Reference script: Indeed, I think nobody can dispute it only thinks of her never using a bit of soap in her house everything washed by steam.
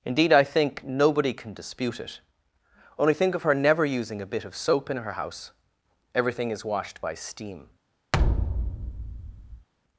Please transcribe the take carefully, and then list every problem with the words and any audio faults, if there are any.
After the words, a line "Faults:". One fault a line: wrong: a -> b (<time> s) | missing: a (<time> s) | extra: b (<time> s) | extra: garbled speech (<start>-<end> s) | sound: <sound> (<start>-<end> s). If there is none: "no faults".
Indeed, I think nobody can dispute it only think of her never using a bit of soap in her house everything is washed by steam.
Faults:
wrong: thinks -> think (3.1 s)
extra: is (6.5 s)
sound: thud (8.1-9.7 s)